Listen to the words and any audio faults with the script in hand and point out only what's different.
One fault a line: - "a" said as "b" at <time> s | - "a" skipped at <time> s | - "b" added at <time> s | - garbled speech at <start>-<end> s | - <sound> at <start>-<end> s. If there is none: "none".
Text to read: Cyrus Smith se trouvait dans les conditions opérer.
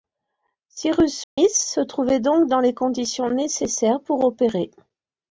- dropout at 1.2-1.4 s
- "donc" added at 2.2 s
- "nécessaires pour" added at 3.3 s